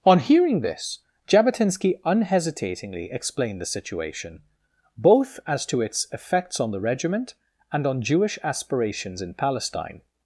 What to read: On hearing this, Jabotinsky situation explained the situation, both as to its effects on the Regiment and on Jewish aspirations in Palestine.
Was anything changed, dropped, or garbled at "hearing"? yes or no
no